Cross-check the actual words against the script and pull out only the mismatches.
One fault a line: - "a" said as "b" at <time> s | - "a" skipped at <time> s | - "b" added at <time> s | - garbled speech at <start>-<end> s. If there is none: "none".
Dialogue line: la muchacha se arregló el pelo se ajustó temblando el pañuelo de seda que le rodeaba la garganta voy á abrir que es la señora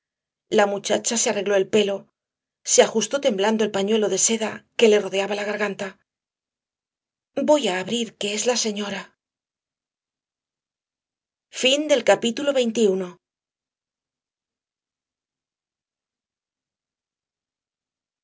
none